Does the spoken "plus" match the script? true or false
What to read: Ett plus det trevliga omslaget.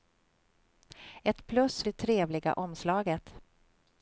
true